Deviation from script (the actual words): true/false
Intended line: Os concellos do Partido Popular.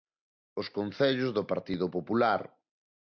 false